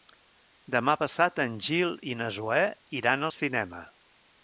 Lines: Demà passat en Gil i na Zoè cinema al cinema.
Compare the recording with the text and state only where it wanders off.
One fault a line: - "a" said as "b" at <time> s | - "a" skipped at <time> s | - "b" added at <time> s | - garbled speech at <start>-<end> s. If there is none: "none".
- "cinema" said as "iran" at 3.0 s